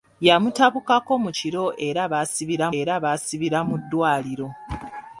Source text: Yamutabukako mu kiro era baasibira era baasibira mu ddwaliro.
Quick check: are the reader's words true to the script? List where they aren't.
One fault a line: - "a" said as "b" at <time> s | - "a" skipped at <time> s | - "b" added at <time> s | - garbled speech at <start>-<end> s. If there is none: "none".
none